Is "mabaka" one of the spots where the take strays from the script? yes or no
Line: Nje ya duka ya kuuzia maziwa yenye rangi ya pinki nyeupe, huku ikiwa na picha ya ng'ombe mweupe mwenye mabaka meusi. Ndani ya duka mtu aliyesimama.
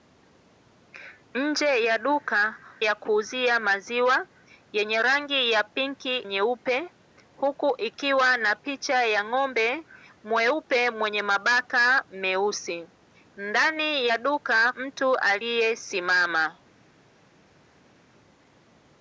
no